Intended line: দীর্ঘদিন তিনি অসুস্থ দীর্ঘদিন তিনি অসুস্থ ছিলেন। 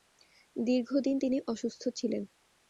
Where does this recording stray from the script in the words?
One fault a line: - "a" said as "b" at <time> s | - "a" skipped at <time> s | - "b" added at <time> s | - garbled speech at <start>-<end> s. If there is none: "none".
- "দীর্ঘদিন তিনি অসুস্থ" skipped at 1.8 s